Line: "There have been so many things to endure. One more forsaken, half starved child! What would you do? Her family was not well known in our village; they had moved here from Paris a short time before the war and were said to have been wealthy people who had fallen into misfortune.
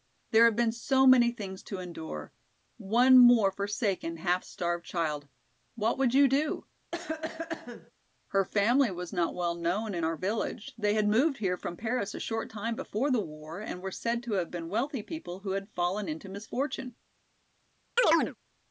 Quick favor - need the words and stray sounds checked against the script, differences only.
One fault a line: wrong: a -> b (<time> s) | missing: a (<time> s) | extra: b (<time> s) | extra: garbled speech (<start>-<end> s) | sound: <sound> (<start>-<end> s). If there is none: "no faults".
sound: cough (6.9-7.9 s)
sound: chirp (18.0-18.4 s)